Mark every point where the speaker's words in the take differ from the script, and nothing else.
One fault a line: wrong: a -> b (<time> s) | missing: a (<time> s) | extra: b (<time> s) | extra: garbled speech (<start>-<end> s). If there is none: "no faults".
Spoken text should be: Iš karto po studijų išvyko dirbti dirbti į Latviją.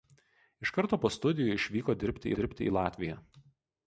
no faults